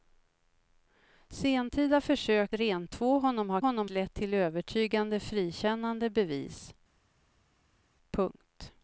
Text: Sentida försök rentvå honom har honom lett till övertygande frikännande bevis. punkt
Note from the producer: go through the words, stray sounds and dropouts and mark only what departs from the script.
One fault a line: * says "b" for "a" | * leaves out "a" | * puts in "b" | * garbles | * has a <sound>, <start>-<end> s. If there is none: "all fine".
all fine